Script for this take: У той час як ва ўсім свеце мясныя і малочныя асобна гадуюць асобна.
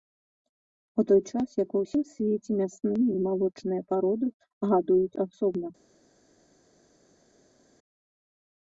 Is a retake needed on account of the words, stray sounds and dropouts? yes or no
yes